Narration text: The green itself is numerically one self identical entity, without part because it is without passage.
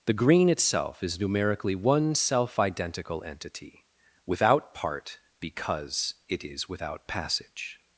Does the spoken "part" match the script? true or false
true